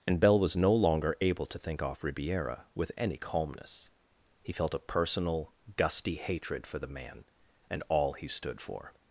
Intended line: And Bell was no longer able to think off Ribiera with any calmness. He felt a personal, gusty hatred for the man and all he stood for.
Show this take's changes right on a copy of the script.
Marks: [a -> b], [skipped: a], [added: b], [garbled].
And Bell was no longer able to think off Ribiera with any calmness. He felt a personal, gusty hatred for the man and all he stood for.